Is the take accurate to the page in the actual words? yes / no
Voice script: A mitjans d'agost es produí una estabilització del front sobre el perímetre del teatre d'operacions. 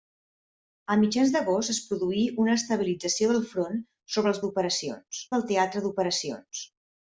no